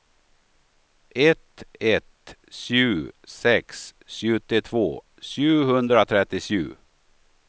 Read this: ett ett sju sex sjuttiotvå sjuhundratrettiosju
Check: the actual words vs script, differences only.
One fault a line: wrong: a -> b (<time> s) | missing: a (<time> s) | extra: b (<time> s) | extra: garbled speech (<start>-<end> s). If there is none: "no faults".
no faults